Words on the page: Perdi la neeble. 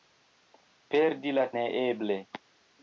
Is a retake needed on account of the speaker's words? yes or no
no